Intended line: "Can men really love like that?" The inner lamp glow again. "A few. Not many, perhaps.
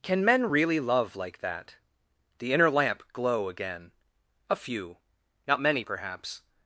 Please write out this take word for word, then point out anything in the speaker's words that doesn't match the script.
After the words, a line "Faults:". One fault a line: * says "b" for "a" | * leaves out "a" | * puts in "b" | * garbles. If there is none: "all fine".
"Can men really love like that?" The inner lamp glow again. "A few. Not many, perhaps.
Faults:
all fine